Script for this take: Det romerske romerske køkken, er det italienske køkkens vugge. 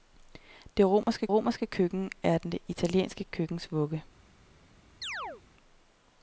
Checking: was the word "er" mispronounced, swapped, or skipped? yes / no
no